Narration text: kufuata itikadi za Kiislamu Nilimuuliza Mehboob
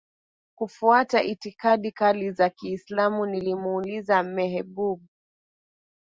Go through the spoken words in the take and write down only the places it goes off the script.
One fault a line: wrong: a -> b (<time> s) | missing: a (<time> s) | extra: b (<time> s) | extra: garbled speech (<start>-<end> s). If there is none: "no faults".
extra: kali (1.9 s)